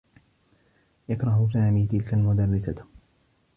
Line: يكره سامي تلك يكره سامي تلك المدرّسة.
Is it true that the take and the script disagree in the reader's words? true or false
true